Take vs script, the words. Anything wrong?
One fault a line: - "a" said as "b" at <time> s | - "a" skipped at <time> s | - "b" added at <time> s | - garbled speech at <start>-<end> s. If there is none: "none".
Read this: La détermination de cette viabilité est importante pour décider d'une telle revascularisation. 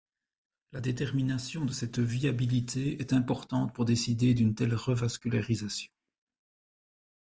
none